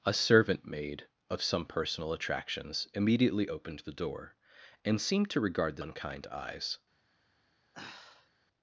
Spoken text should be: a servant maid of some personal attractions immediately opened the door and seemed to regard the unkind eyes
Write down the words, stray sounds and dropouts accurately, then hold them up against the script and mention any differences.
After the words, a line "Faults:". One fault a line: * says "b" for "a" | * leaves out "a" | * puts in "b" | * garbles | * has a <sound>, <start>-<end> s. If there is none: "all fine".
a servant maid of some personal attractions immediately opened the door and seemed to regard the unkind eyes
Faults:
* has a sigh, 7.7-8.3 s